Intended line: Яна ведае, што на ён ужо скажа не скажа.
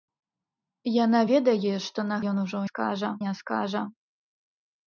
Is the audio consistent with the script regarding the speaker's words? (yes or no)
yes